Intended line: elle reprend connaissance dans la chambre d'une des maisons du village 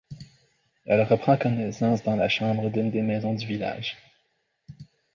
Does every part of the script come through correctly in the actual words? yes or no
yes